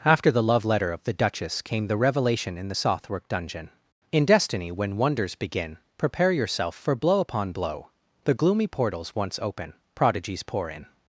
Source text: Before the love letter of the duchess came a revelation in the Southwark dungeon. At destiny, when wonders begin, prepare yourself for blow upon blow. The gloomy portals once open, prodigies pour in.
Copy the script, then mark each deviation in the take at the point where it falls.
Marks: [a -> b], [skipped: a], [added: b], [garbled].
[Before -> After] the love letter of the duchess came [a -> the] revelation in the Southwark dungeon. [At -> In] destiny, when wonders begin, prepare yourself for blow upon blow. The gloomy portals once open, prodigies pour in.